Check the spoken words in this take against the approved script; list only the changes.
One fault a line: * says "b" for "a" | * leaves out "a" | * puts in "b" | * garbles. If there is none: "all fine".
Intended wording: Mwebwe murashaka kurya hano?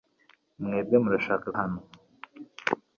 * leaves out "kurya"